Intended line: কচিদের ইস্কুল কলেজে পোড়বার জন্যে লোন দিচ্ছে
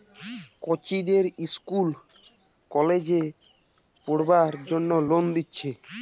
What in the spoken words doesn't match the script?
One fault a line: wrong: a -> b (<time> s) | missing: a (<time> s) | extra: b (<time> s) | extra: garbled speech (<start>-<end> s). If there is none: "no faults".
no faults